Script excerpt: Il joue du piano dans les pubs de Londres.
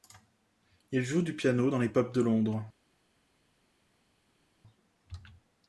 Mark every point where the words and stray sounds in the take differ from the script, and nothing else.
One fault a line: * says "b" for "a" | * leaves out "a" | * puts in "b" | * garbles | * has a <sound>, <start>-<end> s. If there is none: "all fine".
all fine